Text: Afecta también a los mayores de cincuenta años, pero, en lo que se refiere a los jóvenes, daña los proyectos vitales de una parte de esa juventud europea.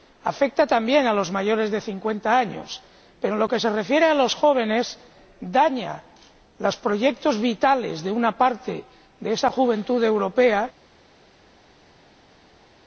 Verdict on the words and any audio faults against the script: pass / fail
pass